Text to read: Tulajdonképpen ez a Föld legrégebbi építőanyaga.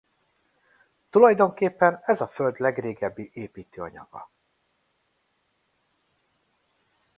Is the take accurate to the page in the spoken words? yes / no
yes